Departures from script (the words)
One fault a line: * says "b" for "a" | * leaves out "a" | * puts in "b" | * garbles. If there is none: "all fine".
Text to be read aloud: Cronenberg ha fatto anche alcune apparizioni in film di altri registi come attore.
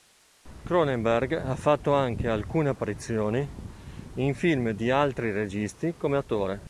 all fine